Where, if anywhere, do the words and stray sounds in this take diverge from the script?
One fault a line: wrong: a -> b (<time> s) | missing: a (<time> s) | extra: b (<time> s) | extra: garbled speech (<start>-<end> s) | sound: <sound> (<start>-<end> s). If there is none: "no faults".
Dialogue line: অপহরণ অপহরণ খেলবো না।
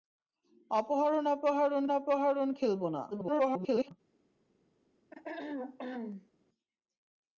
extra: অপহরণ (1.9 s)
extra: garbled speech (3.1-3.9 s)
sound: throat clearing (5.1-6.3 s)